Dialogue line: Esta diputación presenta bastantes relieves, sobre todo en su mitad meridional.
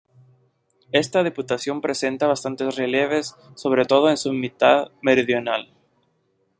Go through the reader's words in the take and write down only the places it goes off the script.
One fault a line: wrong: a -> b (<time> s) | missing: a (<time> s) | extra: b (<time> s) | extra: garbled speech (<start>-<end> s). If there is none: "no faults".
no faults